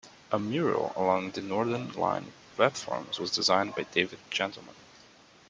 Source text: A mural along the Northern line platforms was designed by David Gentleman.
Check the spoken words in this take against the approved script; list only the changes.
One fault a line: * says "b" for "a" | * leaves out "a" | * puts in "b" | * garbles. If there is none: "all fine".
all fine